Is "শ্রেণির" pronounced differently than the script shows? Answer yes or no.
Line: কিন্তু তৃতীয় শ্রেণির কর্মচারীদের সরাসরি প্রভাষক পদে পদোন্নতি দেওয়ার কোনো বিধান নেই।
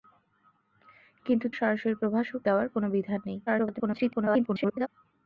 yes